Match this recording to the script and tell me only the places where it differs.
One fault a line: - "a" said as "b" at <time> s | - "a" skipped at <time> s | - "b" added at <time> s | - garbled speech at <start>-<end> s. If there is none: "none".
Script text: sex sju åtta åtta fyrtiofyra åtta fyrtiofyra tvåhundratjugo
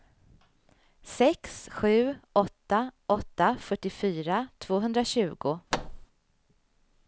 - "åtta fyrtiofyra" skipped at 4.5 s